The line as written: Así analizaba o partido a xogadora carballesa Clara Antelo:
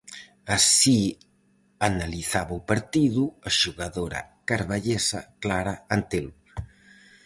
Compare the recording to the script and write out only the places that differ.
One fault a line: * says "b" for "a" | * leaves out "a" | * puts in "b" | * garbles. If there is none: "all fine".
all fine